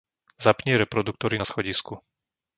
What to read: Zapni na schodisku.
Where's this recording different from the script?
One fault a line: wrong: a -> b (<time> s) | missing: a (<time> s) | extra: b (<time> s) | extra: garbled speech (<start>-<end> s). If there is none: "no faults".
extra: reproduktory (0.7 s)